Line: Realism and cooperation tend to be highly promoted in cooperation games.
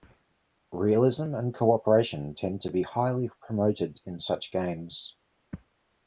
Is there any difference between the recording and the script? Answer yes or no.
yes